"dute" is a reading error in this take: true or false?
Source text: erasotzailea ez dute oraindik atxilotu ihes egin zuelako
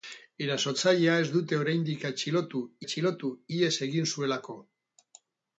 false